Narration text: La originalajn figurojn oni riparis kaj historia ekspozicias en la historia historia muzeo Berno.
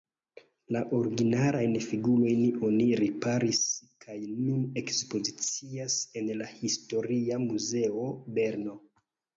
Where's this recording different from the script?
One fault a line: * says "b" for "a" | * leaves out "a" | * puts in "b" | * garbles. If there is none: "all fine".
* says "nun" for "historia"
* leaves out "historia"